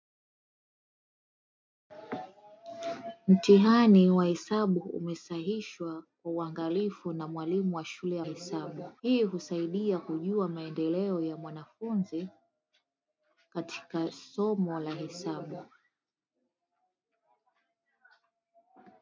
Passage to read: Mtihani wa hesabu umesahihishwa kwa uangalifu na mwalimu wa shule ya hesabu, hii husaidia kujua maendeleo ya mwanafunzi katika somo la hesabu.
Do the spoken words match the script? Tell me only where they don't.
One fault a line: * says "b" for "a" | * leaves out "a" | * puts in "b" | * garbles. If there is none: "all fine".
all fine